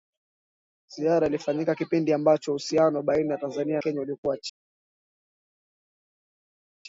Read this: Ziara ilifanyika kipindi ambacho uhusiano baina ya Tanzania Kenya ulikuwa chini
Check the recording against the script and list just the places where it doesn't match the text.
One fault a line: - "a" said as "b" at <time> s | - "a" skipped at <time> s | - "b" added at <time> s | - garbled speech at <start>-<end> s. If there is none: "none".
none